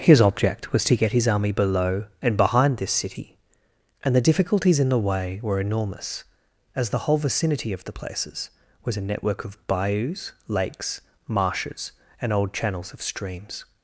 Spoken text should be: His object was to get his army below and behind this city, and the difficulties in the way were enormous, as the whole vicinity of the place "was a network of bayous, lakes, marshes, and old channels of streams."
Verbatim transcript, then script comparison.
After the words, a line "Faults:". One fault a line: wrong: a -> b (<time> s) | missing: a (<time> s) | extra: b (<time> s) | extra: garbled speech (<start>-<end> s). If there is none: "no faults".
His object was to get his army below and behind this city, and the difficulties in the way were enormous, as the whole vicinity of the places "was a network of bayous, lakes, marshes, and old channels of streams."
Faults:
wrong: place -> places (7.9 s)